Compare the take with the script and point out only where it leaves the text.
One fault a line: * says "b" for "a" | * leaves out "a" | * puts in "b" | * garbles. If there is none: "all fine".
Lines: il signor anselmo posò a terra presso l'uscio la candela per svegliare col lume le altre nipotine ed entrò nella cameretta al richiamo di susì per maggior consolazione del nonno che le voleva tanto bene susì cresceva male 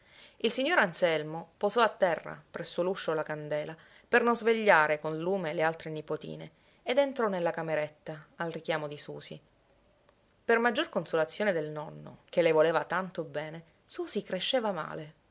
* puts in "non"